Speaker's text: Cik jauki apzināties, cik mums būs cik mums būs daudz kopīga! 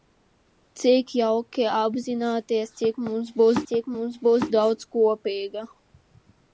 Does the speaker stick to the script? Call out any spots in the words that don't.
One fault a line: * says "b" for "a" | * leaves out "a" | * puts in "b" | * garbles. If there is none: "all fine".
all fine